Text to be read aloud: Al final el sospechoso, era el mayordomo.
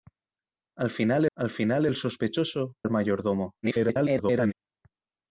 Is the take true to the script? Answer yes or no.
no